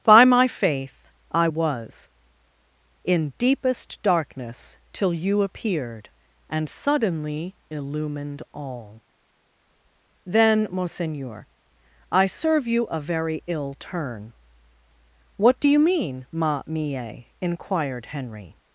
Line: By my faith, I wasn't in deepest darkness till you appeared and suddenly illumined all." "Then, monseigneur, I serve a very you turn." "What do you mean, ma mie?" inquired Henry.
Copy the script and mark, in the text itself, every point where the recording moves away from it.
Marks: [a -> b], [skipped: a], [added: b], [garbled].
By my faith, I [wasn't -> was] in deepest darkness till you appeared and suddenly illumined all." "Then, monseigneur, I serve [added: you] a very [you -> ill] turn." "What do you mean, ma mie?" inquired Henry.